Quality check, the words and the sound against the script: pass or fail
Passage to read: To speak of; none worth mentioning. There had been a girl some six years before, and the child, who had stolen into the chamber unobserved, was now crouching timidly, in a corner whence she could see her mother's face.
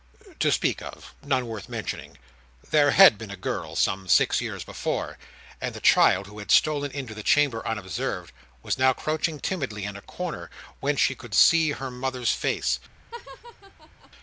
fail